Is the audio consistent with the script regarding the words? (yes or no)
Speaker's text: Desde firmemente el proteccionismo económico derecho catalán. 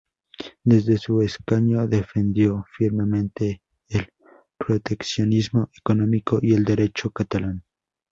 no